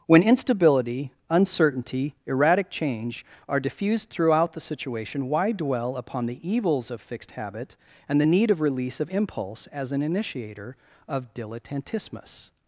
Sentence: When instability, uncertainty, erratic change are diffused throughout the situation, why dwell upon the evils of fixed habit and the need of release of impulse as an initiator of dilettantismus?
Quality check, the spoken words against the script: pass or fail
pass